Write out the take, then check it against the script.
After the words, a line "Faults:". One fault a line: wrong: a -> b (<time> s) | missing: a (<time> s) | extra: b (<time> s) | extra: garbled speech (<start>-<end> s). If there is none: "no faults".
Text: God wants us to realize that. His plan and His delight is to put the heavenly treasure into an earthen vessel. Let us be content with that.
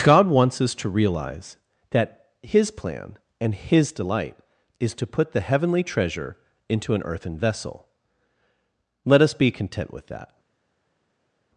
God wants us to realize that. His plan and His delight is to put the heavenly treasure into an earthen vessel. Let us be content with that.
Faults:
no faults